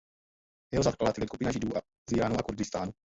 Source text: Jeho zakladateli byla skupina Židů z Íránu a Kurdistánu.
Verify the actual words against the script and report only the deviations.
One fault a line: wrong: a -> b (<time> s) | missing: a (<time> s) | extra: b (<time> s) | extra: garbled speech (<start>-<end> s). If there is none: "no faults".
missing: byla (1.3 s)